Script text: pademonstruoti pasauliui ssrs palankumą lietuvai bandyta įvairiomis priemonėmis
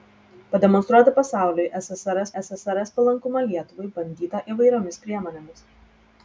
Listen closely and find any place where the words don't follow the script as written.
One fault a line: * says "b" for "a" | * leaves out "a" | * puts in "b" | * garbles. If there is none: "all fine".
* puts in "ssrs"